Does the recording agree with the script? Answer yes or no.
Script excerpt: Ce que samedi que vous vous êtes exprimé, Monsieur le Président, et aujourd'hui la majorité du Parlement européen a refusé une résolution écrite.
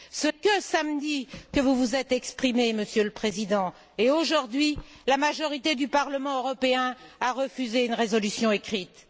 yes